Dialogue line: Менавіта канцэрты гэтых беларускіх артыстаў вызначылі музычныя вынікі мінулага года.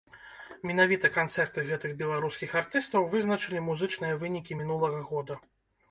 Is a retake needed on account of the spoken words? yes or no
no